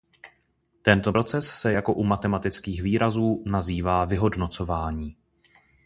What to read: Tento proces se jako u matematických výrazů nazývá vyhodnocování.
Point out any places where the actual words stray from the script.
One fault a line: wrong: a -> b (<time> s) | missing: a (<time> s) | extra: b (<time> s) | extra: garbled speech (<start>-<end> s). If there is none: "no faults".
no faults